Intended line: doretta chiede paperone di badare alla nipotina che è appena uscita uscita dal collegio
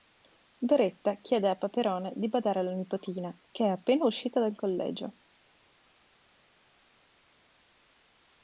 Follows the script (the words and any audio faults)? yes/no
no